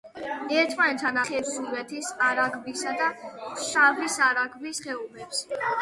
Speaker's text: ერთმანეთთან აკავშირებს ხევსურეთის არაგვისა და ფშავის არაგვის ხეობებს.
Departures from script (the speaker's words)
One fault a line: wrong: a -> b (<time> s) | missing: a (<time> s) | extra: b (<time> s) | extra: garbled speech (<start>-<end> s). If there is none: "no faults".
missing: აკავშირებს (1.2 s)